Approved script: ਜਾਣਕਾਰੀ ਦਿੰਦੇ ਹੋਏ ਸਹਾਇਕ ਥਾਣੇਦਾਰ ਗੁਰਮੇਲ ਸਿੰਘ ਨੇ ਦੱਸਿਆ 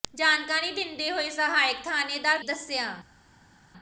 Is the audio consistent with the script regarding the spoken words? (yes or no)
no